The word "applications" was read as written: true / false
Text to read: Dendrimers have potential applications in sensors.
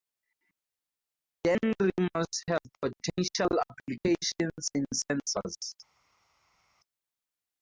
true